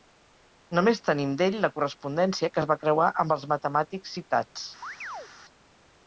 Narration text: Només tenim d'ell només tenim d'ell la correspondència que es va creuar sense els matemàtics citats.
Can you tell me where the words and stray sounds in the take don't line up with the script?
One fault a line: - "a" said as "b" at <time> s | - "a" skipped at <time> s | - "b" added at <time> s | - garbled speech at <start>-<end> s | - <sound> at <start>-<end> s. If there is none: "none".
- "només tenim d'ell" skipped at 1.6 s
- "sense" said as "amb" at 3.2 s
- chirp at 4.8-5.3 s